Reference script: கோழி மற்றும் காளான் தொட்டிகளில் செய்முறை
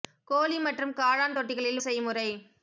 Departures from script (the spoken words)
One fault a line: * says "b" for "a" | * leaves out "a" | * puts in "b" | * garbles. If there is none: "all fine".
all fine